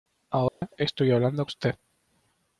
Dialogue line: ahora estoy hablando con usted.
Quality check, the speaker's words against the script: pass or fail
fail